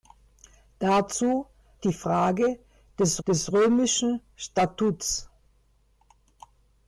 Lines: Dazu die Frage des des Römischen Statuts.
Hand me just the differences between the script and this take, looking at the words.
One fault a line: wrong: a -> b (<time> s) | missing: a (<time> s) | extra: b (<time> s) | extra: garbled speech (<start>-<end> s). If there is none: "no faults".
no faults